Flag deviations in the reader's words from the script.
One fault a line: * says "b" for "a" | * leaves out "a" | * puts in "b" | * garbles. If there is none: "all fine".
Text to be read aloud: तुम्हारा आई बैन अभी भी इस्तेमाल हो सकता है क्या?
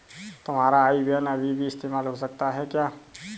all fine